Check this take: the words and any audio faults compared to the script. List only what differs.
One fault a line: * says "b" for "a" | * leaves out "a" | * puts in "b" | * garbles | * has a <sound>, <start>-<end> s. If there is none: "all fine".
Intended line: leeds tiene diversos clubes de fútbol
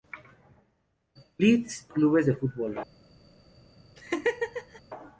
* leaves out "tiene diversos"
* has a laugh, 4.0-4.8 s